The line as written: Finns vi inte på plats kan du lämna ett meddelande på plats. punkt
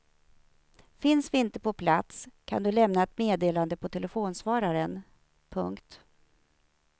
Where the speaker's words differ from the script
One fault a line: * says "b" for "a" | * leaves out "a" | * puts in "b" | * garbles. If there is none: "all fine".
* says "telefonsvararen" for "plats"